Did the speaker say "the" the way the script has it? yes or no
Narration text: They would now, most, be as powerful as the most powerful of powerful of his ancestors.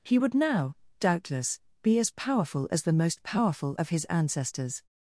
yes